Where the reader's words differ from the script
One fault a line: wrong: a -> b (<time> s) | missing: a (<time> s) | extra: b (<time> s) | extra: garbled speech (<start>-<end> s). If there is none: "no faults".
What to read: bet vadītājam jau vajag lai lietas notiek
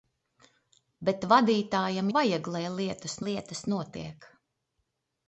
missing: jau (2.1 s)
extra: lietas (3.2 s)